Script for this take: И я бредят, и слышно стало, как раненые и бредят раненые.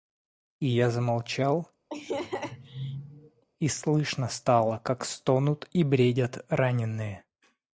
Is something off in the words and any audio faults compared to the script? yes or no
yes